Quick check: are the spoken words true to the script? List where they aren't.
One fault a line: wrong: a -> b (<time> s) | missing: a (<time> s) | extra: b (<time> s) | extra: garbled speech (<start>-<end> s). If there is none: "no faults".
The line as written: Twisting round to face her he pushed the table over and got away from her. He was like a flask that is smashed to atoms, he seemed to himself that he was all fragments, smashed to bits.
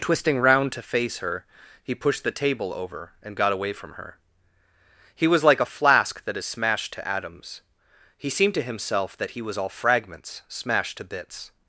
no faults